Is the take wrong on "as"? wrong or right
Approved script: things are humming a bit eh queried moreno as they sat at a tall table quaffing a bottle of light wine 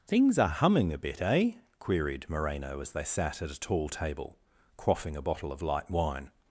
right